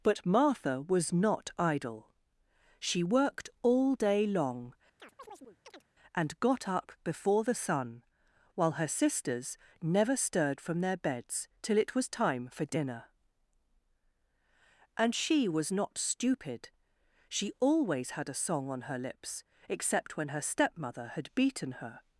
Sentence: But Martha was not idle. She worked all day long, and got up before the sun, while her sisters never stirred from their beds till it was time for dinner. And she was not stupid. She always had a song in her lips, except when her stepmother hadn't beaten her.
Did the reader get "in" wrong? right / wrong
wrong